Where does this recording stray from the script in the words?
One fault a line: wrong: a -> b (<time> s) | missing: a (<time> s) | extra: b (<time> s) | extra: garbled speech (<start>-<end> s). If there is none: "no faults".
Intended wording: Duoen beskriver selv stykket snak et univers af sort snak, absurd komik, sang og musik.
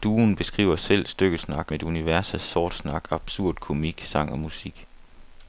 no faults